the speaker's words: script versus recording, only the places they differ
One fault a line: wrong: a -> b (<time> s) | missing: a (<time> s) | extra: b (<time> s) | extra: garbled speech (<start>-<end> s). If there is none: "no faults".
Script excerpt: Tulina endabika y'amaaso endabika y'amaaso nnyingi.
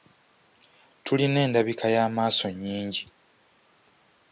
missing: endabika y'amaaso (2.5 s)